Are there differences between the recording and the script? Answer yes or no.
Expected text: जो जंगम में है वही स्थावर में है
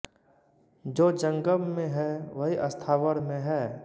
no